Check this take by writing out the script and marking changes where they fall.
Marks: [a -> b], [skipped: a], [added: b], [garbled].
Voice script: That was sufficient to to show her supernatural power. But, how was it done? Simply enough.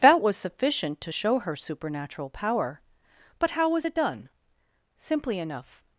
That was sufficient to [skipped: to] show her supernatural power. But, how was it done? Simply enough.